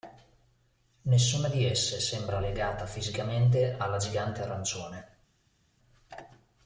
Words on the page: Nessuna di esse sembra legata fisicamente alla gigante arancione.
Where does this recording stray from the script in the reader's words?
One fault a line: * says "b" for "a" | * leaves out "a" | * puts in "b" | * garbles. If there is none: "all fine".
all fine